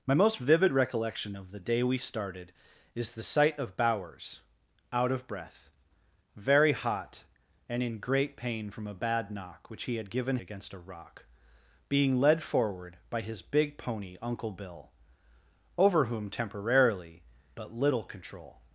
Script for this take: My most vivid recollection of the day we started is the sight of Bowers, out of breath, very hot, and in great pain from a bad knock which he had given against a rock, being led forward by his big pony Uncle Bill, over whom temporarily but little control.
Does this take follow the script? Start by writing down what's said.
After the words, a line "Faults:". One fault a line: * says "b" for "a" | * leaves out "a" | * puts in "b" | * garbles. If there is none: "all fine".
My most vivid recollection of the day we started is the sight of Bowers, out of breath, very hot, and in great pain from a bad knock which he had given against a rock, being led forward by his big pony Uncle Bill, over whom temporarily but little control.
Faults:
all fine